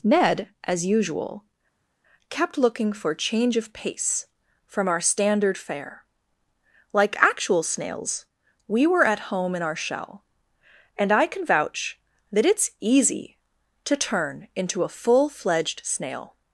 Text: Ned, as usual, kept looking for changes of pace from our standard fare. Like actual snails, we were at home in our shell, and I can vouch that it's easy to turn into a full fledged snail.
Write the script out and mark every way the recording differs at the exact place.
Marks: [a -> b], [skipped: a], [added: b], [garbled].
Ned, as usual, kept looking for [changes -> change] of pace from our standard fare. Like actual snails, we were at home in our shell, and I can vouch that it's easy to turn into a full fledged snail.